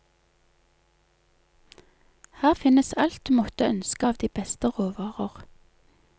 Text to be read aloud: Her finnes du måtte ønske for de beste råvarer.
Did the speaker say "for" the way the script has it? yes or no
no